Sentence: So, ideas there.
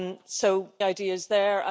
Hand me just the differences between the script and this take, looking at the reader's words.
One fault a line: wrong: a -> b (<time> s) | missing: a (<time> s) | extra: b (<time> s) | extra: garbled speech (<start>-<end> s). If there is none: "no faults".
no faults